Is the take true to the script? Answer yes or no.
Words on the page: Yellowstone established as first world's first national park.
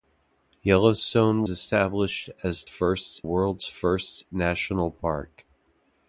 yes